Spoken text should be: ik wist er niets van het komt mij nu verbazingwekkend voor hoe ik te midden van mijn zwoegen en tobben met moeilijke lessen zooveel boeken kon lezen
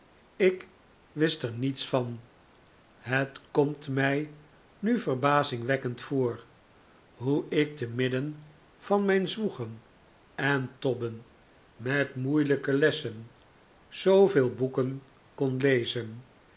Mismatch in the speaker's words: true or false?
false